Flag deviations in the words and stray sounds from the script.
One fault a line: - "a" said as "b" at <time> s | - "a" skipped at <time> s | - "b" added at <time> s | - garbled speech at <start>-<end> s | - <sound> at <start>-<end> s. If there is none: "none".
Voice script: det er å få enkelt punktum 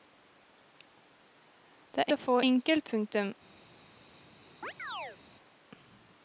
- chirp at 4.6-5.2 s